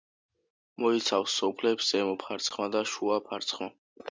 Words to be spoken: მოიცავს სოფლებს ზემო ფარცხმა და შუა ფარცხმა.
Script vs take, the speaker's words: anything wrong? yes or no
no